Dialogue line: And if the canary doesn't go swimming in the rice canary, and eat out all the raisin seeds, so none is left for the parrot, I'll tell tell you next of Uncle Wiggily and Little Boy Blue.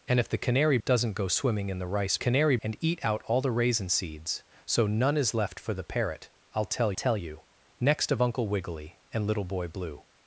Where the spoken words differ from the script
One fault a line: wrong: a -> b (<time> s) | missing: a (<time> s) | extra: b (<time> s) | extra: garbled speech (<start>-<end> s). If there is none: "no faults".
no faults